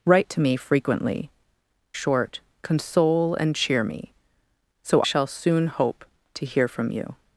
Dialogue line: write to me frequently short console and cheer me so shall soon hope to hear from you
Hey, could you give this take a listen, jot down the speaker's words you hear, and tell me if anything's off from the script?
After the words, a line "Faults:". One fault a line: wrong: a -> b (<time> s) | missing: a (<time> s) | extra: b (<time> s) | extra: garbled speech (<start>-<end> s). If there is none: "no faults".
write to me frequently short console and cheer me so shall soon hope to hear from you
Faults:
no faults